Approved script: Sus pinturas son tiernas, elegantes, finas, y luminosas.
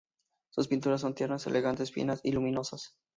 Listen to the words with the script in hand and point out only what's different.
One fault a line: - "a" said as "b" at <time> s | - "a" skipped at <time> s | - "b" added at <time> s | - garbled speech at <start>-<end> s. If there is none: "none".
none